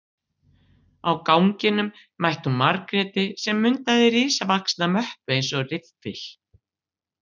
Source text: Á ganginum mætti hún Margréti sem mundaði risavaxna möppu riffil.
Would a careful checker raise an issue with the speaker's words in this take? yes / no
yes